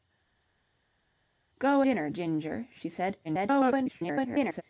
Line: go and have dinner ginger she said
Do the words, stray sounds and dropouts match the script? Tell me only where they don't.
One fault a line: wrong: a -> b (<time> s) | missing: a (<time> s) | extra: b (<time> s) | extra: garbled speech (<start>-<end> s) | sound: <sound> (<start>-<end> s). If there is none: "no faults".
missing: and have (1.8 s)
extra: garbled speech (3.2-4.6 s)